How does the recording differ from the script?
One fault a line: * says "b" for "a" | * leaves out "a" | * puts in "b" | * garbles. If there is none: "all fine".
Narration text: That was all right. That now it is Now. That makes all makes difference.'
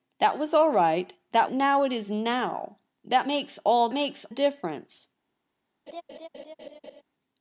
all fine